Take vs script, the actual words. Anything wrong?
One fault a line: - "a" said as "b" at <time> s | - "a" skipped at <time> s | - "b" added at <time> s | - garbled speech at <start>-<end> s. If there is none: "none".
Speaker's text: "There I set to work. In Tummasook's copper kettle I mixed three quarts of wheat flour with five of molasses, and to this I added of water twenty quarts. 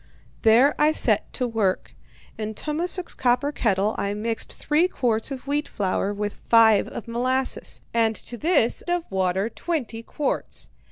- "I added" skipped at 8.8 s